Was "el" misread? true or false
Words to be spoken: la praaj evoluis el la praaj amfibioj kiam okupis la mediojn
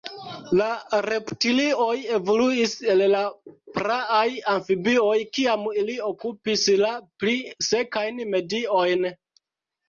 false